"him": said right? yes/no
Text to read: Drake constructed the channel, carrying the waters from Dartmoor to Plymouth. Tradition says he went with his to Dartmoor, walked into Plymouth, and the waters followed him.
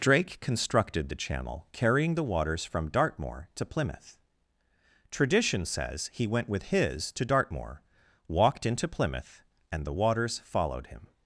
yes